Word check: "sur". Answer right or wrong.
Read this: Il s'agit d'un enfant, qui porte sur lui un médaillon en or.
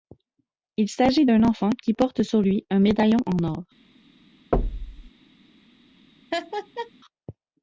right